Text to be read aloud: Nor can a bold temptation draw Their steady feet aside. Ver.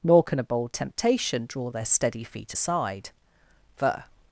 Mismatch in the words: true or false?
false